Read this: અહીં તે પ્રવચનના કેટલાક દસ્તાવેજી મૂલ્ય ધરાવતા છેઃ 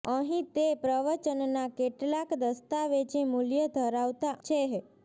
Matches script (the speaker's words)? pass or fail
pass